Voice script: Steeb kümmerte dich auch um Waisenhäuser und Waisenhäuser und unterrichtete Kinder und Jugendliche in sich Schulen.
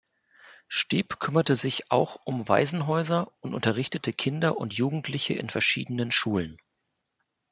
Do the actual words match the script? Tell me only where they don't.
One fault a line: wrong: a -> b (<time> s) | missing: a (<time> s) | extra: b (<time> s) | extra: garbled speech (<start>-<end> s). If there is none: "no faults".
wrong: dich -> sich (1.6 s)
missing: Waisenhäuser und (3.5 s)
wrong: sich -> verschiedenen (5.5 s)